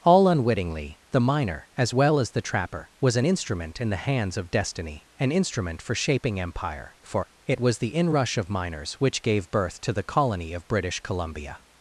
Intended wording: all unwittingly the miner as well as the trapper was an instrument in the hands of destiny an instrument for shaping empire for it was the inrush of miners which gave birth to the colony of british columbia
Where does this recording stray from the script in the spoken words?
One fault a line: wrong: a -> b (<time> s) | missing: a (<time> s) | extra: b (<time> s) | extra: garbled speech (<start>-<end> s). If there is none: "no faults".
no faults